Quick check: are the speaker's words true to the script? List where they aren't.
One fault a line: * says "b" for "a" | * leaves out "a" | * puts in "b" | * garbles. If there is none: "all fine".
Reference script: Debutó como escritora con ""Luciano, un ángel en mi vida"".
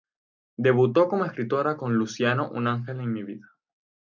all fine